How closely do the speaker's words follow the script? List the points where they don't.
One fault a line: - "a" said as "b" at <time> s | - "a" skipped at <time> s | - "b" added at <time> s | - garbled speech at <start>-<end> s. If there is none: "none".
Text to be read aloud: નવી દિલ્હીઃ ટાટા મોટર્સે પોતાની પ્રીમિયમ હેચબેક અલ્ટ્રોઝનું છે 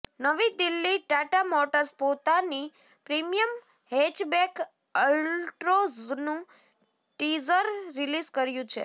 - "ટીઝર રિલીઝ કર્યું" added at 7.2 s